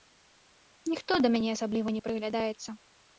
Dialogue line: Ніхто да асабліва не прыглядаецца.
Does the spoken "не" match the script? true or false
true